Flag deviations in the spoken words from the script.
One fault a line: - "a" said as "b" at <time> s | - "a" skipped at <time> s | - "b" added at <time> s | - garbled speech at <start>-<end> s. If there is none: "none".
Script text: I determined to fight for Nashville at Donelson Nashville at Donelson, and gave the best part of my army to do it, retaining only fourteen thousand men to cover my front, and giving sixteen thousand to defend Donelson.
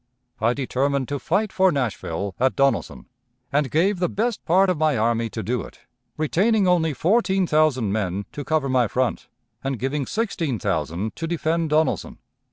- "Nashville at Donelson" skipped at 3.0 s